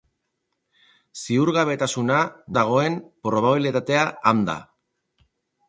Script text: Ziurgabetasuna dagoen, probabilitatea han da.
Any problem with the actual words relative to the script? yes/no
no